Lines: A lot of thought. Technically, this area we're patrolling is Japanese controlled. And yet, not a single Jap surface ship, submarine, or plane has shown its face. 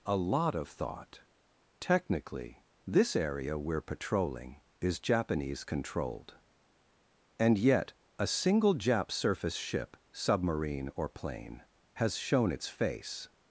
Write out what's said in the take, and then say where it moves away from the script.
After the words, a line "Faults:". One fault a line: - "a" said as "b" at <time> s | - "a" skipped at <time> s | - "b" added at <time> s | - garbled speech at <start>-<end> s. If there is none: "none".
A lot of thought. Technically, this area we're patrolling is Japanese controlled. And yet, a single Jap surface ship, submarine, or plane has shown its face.
Faults:
- "not" skipped at 7.9 s